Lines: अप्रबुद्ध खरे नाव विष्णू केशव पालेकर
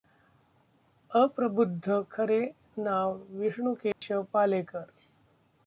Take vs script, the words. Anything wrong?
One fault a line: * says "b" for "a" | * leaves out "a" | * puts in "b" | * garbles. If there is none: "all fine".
all fine